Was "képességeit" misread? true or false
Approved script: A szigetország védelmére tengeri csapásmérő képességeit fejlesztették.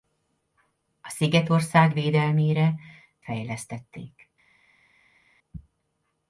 true